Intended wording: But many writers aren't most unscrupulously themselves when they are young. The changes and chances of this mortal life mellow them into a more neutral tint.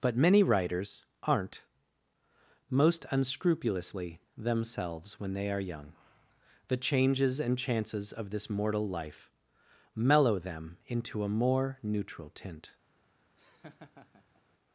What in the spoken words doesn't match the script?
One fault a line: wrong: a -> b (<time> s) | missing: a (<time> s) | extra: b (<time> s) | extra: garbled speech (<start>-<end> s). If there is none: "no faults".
no faults